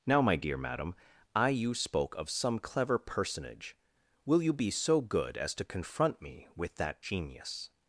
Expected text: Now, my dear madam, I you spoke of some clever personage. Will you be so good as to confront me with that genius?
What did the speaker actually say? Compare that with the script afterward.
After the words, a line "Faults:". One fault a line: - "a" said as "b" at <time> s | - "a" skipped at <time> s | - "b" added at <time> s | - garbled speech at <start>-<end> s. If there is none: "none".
Now, my dear madam, I you spoke of some clever personage. Will you be so good as to confront me with that genius?
Faults:
none